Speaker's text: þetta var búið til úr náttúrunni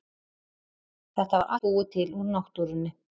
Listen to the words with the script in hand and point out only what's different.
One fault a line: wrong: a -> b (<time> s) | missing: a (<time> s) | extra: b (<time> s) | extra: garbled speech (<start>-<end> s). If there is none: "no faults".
no faults